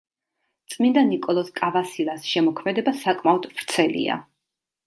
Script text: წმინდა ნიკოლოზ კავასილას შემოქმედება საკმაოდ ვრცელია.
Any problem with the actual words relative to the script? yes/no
no